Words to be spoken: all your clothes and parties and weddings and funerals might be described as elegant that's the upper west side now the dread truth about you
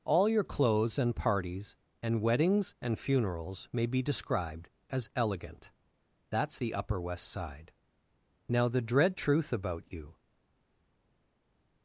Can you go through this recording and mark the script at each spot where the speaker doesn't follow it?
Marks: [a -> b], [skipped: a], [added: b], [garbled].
all your clothes and parties and weddings and funerals [might -> may] be described as elegant that's the upper west side now the dread truth about you